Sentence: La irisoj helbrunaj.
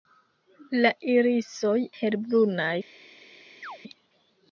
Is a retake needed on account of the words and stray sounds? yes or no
yes